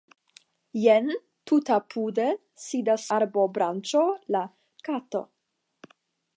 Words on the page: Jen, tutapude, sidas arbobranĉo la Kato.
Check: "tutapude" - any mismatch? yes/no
no